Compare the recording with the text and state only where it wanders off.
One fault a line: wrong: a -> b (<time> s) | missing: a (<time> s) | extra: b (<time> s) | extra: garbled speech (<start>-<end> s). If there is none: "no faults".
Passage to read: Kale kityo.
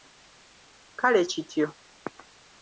no faults